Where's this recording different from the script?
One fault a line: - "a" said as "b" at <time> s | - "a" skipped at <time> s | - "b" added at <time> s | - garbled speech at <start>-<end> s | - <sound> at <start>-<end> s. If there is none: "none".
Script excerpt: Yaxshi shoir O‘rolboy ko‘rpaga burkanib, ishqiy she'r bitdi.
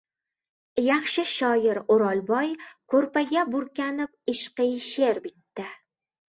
none